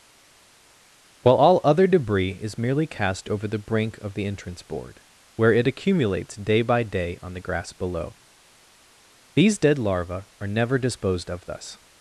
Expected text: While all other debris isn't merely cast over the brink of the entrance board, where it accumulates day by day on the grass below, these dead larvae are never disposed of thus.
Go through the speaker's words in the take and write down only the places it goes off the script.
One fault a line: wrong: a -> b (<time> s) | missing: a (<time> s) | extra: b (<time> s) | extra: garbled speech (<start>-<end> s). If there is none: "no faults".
wrong: isn't -> is (2.3 s)